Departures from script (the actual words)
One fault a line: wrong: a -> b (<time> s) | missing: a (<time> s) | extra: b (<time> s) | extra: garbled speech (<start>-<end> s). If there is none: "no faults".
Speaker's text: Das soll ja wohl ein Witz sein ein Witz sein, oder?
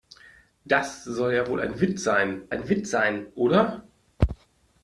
no faults